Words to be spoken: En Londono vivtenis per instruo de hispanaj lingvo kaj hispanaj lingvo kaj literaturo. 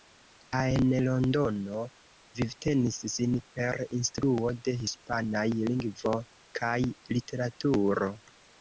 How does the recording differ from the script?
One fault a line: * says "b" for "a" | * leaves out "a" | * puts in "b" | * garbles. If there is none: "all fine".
* puts in "sin"
* leaves out "hispanaj lingvo kaj"